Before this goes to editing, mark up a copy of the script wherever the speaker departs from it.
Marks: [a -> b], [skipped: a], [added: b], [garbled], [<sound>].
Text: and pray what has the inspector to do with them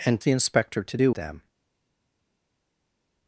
and [skipped: pray what has] the inspector to do [skipped: with] them